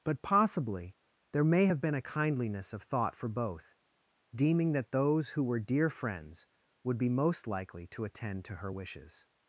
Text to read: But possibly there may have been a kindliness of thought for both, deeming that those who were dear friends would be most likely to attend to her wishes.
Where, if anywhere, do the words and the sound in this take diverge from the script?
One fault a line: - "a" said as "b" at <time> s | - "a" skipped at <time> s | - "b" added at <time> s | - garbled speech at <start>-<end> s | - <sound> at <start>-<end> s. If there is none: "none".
none